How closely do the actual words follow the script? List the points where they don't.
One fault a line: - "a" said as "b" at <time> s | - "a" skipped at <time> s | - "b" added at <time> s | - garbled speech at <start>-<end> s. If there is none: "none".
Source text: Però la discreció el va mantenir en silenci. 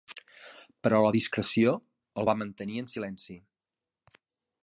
none